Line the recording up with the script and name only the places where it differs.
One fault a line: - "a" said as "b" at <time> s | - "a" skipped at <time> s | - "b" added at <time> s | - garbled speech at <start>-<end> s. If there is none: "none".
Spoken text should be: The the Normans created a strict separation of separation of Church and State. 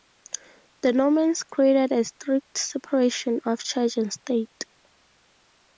- "the" skipped at 0.9 s
- "separation of" skipped at 3.6 s